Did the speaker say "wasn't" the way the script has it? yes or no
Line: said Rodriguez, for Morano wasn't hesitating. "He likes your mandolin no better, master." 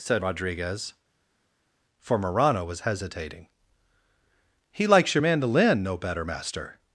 no